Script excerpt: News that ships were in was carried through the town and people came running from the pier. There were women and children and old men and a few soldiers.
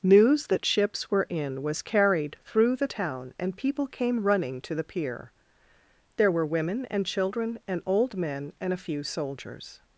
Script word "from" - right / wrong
wrong